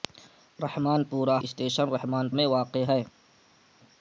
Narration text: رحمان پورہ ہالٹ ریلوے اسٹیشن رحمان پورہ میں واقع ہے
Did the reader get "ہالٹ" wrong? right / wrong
wrong